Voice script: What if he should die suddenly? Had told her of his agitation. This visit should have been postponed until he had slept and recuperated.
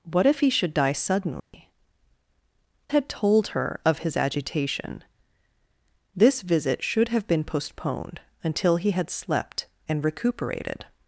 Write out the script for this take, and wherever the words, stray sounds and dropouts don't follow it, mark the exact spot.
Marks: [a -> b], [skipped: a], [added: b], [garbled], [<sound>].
What if he should die suddenly? [dropout] Had told her of his agitation. This visit should have been postponed until he had slept and recuperated.